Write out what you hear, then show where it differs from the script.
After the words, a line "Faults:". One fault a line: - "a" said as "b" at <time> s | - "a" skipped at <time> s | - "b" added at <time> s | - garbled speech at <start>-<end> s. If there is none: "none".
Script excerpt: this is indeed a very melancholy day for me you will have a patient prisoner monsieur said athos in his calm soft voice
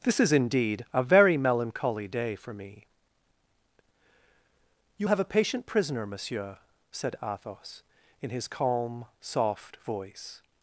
this is indeed a very melancholy day for me you have a patient prisoner monsieur said athos in his calm soft voice
Faults:
- "will" skipped at 5.1 s